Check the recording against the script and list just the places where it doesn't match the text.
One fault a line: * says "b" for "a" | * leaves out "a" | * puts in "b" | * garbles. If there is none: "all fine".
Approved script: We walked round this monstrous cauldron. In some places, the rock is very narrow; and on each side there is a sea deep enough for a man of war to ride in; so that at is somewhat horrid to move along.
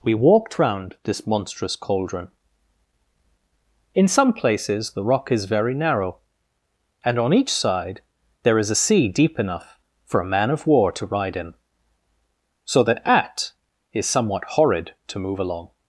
all fine